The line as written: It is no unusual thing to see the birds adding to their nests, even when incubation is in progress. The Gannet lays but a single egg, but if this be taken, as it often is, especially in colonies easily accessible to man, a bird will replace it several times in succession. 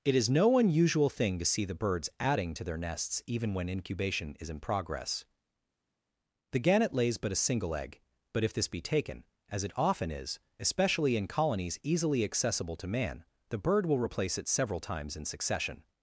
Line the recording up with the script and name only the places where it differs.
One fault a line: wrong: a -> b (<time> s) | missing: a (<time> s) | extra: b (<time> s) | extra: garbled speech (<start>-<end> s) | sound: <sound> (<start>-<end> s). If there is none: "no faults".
wrong: a -> the (13.5 s)